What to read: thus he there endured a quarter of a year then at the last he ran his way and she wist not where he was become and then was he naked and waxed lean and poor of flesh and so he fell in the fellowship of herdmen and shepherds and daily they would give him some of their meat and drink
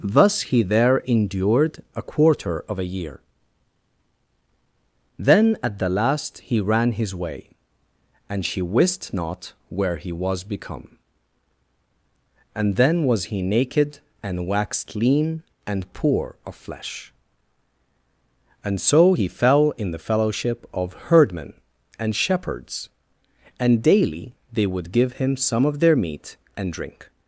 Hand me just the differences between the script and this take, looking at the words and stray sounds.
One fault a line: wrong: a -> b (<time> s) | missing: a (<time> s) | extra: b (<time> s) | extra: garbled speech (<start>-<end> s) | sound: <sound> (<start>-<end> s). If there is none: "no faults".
no faults